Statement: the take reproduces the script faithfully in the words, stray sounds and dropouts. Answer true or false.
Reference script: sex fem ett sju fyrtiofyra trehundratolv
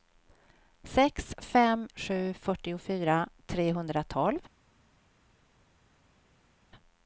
false